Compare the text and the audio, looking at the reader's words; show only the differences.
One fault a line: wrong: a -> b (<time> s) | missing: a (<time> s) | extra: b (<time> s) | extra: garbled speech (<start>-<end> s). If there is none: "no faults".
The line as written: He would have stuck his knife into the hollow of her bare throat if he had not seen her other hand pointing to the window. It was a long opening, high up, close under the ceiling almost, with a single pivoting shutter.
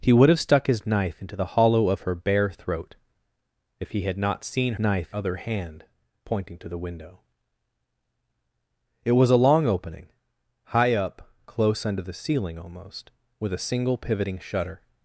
wrong: her -> knife (4.8 s)